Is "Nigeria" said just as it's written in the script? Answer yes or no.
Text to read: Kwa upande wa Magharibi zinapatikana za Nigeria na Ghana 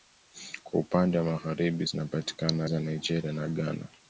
yes